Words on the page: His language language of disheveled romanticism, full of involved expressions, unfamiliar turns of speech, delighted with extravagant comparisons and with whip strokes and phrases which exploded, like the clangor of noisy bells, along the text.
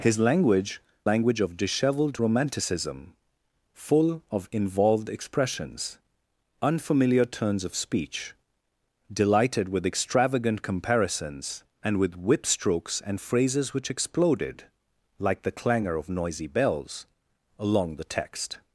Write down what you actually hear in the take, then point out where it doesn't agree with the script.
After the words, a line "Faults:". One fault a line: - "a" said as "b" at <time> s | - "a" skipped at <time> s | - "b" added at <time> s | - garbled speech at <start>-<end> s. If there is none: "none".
His language language of disheveled romanticism, full of involved expressions, unfamiliar turns of speech, delighted with extravagant comparisons and with whip strokes and phrases which exploded, like the clangor of noisy bells, along the text.
Faults:
none